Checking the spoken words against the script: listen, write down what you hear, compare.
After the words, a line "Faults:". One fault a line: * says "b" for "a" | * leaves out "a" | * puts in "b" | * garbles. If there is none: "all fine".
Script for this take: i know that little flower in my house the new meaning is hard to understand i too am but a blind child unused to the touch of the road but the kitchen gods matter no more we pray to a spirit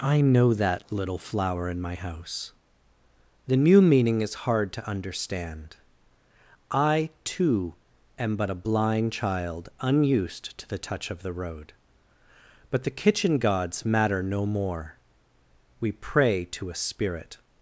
i know that little flower in my house the new meaning is hard to understand i too am but a blind child unused to the touch of the road but the kitchen gods matter no more we pray to a spirit
Faults:
all fine